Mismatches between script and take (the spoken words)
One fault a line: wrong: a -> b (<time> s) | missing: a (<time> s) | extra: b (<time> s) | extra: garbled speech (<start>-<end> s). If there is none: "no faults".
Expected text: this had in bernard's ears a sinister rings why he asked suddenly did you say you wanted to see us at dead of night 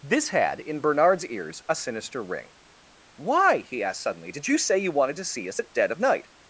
wrong: rings -> ring (2.2 s)